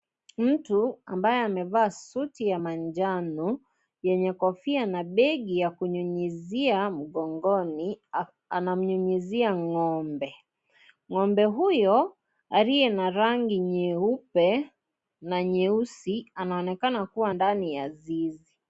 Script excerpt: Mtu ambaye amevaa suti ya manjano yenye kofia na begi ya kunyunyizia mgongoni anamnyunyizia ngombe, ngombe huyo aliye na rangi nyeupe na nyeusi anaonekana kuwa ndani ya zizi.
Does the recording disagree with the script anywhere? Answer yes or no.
no